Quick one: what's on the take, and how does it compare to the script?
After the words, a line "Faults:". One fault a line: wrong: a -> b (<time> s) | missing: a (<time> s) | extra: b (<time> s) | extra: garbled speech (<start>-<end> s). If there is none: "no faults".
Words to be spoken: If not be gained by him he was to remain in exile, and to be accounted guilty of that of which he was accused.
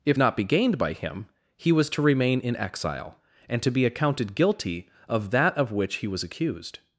If not be gained by him he was to remain in exile, and to be accounted guilty of that of which he was accused.
Faults:
no faults